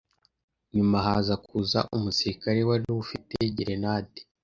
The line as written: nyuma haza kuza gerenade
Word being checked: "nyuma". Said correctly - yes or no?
yes